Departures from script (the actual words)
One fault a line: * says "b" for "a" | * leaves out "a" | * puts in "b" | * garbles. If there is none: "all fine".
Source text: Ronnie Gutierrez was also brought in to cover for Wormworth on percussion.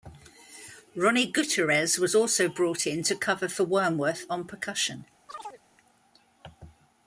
all fine